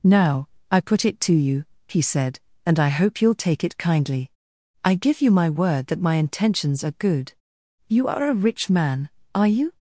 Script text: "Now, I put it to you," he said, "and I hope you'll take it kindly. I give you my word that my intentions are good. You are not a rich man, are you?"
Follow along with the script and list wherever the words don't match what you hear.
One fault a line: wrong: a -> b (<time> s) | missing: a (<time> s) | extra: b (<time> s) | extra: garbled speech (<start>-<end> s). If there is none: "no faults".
missing: not (8.3 s)